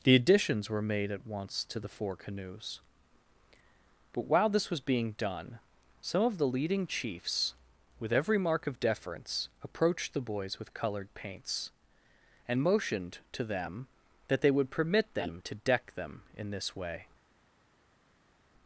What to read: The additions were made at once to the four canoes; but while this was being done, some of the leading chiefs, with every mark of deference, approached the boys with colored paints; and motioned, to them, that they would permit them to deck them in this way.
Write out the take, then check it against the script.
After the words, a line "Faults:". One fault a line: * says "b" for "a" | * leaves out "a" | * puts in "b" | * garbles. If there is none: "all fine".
The additions were made at once to the four canoes; but while this was being done, some of the leading chiefs, with every mark of deference, approached the boys with colored paints; and motioned, to them, that they would permit them to deck them in this way.
Faults:
all fine